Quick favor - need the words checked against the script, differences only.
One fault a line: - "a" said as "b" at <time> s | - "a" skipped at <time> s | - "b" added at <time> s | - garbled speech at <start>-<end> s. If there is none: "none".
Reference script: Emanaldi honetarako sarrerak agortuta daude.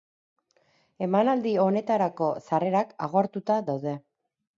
none